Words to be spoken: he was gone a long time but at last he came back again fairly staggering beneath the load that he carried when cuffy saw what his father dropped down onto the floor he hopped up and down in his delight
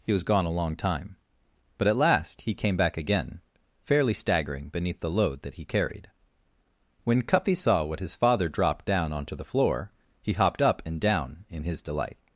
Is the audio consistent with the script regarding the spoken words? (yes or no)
yes